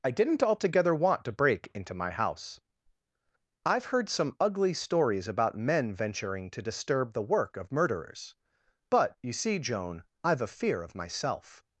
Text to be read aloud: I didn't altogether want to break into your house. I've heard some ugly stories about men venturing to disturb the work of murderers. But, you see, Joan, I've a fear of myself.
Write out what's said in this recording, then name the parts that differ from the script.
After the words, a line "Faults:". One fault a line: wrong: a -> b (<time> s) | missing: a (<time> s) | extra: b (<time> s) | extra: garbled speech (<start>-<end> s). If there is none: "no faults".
I didn't altogether want to break into my house. I've heard some ugly stories about men venturing to disturb the work of murderers. But, you see, Joan, I've a fear of myself.
Faults:
wrong: your -> my (1.9 s)